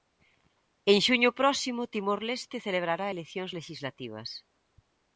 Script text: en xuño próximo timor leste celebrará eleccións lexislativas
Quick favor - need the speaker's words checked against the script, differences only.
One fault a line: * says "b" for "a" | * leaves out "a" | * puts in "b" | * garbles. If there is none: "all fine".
all fine